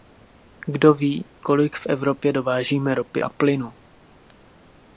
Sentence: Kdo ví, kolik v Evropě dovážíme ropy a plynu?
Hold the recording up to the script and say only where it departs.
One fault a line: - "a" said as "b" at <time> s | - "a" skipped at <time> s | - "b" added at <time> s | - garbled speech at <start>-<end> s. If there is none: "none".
none